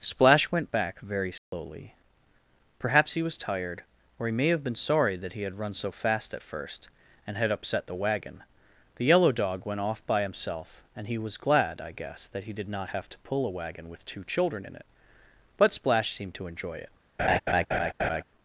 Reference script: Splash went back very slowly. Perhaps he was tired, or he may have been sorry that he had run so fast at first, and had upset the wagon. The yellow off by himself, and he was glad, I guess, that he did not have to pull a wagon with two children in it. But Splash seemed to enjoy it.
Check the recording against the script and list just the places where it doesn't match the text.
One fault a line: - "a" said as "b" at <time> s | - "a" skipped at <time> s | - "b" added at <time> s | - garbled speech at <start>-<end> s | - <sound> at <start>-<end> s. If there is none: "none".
- dropout at 1.4-1.5 s
- "dog went" added at 9.3 s
- laugh at 17.2-18.2 s